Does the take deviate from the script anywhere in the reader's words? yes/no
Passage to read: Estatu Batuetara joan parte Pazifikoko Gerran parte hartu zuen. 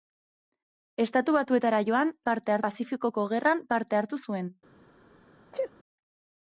no